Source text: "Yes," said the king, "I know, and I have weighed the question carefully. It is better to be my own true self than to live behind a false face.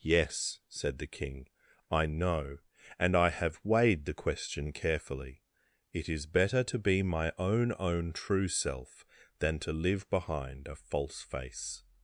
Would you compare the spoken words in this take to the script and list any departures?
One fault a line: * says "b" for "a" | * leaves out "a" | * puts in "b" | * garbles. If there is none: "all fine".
* puts in "own"